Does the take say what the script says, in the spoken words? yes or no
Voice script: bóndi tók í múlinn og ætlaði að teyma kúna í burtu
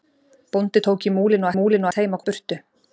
no